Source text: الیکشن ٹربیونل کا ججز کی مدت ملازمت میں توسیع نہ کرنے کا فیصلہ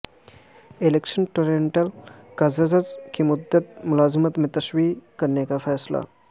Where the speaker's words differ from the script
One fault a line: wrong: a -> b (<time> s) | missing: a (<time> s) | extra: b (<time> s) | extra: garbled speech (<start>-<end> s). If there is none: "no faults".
missing: نہ (4.9 s)